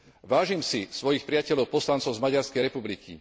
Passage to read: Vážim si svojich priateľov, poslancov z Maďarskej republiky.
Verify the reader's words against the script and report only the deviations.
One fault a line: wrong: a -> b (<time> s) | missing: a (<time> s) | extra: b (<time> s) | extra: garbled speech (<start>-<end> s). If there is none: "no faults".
no faults